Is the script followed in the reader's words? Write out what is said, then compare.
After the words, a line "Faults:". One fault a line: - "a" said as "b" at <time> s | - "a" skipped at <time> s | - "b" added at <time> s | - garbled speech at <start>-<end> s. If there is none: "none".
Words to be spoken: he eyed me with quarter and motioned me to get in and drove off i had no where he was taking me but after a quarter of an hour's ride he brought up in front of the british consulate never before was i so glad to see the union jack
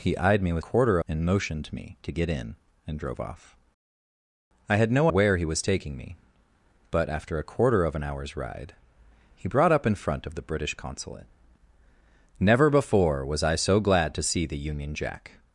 he eyed me with quarter and motioned me to get in and drove off i had no where he was taking me but after a quarter of an hour's ride he brought up in front of the british consulate never before was i so glad to see the union jack
Faults:
none